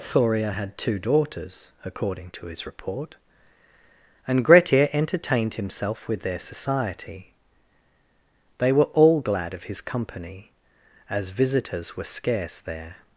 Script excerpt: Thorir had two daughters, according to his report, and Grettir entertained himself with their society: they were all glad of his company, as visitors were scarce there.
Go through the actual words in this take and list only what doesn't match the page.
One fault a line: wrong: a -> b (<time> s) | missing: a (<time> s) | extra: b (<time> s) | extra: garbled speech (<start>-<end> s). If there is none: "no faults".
no faults